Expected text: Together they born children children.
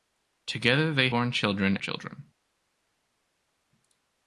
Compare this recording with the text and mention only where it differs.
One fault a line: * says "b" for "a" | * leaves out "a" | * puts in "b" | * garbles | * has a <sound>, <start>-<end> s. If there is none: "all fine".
all fine